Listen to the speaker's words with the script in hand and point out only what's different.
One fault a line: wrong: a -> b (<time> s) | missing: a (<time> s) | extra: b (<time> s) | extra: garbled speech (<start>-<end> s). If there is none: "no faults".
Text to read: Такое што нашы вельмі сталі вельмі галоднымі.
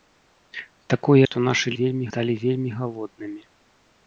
no faults